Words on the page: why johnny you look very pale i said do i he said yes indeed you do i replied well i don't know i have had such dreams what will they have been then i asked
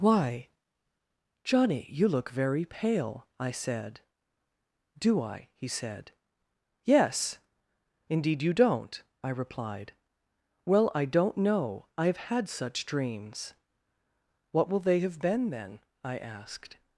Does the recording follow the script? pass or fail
fail